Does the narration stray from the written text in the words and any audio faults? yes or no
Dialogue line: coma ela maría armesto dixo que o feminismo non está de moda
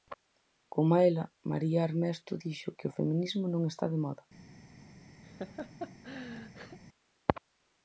yes